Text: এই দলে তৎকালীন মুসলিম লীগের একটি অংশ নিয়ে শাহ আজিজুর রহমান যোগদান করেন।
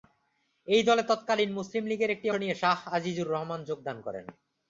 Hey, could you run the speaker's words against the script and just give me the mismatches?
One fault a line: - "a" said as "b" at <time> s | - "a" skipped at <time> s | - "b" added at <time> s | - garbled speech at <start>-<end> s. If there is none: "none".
- "অংশ" skipped at 2.3 s